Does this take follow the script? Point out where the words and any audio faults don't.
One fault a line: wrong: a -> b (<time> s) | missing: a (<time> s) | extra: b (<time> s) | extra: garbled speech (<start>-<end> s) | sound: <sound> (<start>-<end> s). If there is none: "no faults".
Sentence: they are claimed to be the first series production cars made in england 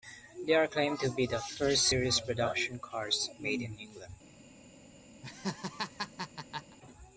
sound: laugh (5.2-6.8 s)